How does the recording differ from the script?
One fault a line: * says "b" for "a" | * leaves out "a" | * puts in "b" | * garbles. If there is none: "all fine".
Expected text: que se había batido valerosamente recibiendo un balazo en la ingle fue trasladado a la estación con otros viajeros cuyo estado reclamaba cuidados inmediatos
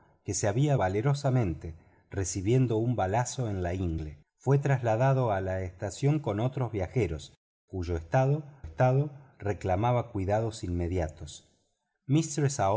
* leaves out "batido"
* puts in "estado"